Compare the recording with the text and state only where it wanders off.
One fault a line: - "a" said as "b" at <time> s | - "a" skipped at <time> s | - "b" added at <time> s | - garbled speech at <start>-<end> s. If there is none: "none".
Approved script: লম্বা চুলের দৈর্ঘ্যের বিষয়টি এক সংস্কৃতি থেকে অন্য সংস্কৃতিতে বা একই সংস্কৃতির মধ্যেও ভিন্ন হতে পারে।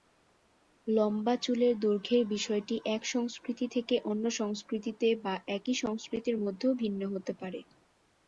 none